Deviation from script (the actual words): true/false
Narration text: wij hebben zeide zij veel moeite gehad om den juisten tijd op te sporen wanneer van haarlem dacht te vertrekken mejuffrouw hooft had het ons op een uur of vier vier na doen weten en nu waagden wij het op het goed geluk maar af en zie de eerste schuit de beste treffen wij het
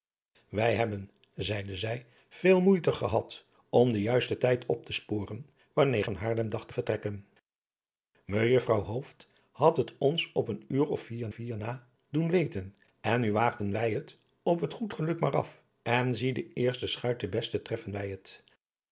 false